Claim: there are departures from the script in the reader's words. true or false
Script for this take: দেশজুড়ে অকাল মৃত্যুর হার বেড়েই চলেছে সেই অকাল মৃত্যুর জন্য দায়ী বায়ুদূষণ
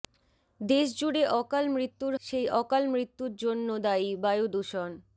true